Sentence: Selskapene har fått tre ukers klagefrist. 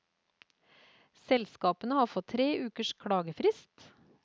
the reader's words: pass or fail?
pass